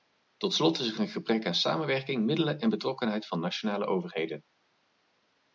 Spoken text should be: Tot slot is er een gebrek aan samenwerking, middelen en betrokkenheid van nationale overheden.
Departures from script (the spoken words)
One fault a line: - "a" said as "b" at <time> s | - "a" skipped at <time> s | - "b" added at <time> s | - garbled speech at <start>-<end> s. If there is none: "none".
none